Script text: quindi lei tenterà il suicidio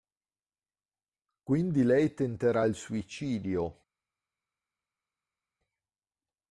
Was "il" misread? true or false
false